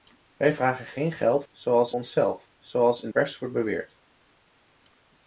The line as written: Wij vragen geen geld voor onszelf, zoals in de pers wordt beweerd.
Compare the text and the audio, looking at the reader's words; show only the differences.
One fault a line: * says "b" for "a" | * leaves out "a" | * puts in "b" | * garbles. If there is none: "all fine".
* says "zoals" for "voor"
* leaves out "de"